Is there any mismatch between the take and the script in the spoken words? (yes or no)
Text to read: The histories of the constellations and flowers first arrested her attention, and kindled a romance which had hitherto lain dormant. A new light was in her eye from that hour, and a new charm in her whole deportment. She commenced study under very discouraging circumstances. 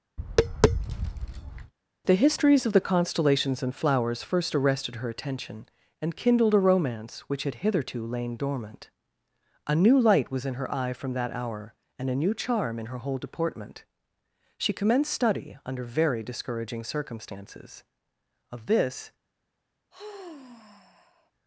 yes